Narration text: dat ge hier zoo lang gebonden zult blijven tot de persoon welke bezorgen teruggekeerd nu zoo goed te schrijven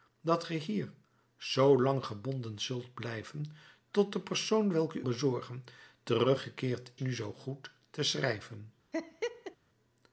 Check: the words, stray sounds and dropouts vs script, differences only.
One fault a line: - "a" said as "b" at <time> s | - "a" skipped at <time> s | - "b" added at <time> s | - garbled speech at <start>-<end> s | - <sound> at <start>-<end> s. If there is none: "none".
- laugh at 8.9-9.6 s